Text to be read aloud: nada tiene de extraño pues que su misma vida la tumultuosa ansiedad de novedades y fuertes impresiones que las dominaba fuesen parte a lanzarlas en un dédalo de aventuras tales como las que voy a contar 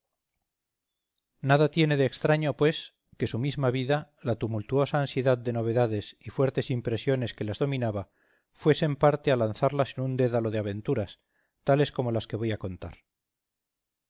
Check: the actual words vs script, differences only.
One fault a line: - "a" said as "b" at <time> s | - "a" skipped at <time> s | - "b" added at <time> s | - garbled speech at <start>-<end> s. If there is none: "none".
none